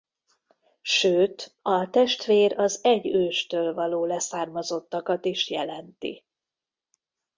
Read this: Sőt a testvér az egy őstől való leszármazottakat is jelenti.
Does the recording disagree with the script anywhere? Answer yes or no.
no